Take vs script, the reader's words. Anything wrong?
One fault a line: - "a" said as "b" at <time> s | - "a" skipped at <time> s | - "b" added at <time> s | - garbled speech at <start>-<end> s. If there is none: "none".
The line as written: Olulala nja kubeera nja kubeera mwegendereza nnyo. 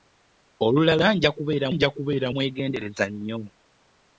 none